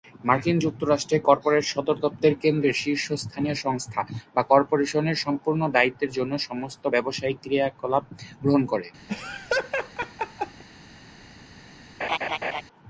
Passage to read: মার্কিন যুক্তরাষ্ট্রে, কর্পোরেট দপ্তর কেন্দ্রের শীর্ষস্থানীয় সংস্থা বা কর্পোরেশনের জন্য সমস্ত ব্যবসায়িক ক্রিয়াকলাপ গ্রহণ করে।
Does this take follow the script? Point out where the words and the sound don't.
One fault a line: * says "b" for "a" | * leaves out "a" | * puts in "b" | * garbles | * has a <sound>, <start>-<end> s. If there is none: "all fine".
* puts in "সদর"
* puts in "সম্পূর্ণ দায়িত্বের"
* has a laugh, 9.1-10.6 s
* has a laugh, 12.0-12.6 s